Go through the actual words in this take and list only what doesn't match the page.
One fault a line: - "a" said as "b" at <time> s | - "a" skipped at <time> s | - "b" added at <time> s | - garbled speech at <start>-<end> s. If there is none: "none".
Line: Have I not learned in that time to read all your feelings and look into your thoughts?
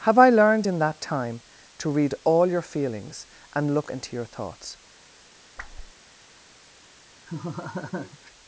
- "not" skipped at 0.3 s